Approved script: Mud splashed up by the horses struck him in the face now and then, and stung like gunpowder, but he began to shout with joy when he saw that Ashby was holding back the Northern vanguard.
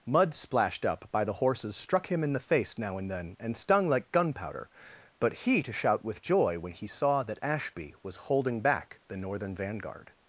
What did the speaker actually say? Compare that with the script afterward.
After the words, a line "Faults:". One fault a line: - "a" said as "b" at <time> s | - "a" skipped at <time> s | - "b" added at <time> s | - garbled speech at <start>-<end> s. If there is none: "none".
Mud splashed up by the horses struck him in the face now and then, and stung like gunpowder, but he to shout with joy when he saw that Ashby was holding back the Northern vanguard.
Faults:
- "began" skipped at 5.6 s